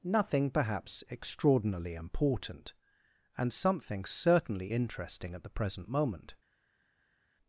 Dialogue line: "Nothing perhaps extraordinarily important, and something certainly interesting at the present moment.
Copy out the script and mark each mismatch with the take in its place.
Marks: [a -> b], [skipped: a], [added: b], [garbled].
"Nothing perhaps extraordinarily important, and something certainly interesting at the present moment.